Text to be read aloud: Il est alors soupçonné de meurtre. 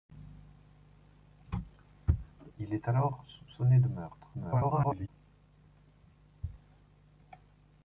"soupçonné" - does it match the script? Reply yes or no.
yes